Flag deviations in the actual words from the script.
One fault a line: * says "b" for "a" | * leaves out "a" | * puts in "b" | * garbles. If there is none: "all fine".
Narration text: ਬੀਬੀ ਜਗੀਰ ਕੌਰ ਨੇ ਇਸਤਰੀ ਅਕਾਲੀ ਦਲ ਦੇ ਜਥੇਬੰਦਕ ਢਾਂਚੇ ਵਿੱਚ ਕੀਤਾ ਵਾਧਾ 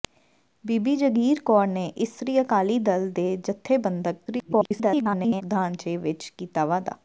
* garbles